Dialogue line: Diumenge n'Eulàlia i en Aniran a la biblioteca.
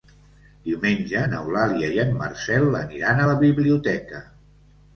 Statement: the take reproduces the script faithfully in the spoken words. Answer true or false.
false